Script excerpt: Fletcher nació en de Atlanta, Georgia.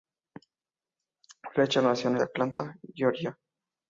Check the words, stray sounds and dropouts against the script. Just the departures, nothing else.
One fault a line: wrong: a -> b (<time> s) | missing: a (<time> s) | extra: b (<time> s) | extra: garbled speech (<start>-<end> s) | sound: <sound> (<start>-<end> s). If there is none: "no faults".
sound: dropout (2.5-2.6 s)